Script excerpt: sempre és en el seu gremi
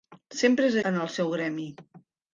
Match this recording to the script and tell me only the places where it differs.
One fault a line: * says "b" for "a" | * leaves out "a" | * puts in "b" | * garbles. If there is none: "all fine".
all fine